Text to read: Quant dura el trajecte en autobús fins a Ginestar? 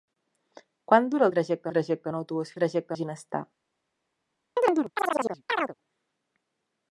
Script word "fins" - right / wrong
wrong